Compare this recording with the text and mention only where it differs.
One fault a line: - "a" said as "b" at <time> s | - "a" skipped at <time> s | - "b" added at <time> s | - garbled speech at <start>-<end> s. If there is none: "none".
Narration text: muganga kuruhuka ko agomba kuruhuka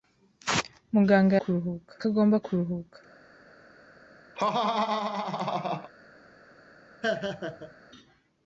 none